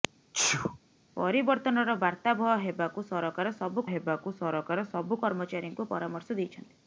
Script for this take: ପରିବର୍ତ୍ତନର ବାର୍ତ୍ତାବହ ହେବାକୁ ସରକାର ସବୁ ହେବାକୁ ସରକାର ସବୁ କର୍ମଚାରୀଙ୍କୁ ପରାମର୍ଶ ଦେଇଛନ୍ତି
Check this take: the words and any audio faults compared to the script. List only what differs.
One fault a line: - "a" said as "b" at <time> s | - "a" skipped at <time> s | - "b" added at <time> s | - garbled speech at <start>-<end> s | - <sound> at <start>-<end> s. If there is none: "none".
- sneeze at 0.3-0.8 s